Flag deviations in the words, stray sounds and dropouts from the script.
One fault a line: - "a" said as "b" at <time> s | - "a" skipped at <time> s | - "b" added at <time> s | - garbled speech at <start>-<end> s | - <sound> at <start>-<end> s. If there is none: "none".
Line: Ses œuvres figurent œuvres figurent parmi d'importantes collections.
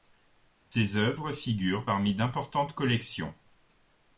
- dropout at 0.6-0.7 s
- "œuvres figurent" skipped at 1.9 s